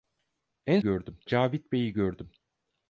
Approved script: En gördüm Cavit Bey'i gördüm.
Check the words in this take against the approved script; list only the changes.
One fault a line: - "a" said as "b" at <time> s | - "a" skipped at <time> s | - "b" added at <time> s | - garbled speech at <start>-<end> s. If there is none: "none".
none